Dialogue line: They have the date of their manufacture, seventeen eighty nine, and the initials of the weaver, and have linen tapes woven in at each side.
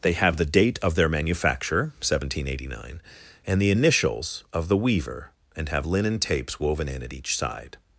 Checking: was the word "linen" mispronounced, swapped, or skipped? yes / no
no